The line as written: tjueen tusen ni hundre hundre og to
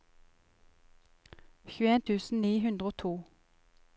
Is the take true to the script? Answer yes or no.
no